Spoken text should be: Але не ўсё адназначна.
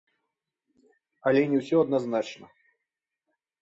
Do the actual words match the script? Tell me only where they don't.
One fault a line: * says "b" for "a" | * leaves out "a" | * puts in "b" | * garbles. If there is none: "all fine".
all fine